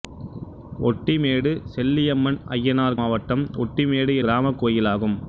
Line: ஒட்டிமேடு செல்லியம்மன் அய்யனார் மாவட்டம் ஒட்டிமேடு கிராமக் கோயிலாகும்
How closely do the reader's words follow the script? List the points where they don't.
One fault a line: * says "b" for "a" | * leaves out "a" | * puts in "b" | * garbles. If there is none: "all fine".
all fine